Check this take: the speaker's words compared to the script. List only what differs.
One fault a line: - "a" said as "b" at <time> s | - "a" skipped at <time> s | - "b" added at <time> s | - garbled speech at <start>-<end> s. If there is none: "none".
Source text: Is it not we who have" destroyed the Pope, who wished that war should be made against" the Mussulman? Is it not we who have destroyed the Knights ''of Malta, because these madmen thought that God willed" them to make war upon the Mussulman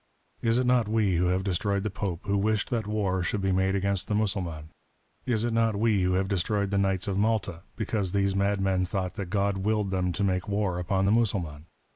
none